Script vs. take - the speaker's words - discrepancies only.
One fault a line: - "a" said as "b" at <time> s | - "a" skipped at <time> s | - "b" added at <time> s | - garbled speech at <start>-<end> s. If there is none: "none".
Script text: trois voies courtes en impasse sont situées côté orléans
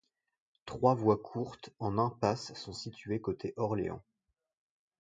none